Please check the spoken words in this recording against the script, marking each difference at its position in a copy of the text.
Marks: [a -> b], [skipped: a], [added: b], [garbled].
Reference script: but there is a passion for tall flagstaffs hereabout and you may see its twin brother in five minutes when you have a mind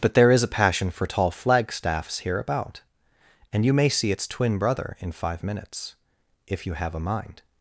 but there is a passion for tall flagstaffs hereabout and you may see its twin brother in five minutes [when -> if] you have a mind